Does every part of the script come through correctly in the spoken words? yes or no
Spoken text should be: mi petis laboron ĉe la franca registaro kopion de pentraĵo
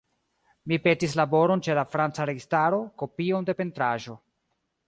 yes